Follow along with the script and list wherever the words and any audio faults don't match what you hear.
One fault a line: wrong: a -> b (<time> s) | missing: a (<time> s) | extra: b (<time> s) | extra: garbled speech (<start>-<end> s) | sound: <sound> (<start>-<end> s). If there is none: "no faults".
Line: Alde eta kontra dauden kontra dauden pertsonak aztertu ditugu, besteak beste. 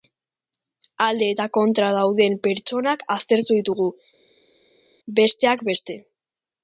missing: kontra dauden (2.4 s)